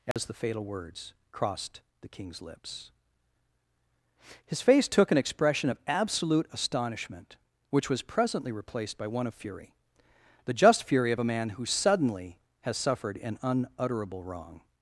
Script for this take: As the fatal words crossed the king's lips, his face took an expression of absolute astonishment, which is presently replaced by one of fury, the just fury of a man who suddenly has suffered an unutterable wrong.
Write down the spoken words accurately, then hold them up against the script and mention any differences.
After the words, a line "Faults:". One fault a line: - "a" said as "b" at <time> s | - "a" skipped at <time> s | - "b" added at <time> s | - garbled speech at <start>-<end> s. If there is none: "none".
As the fatal words crossed the king's lips, his face took an expression of absolute astonishment, which was presently replaced by one of fury, the just fury of a man who suddenly has suffered an unutterable wrong.
Faults:
- "is" said as "was" at 7.9 s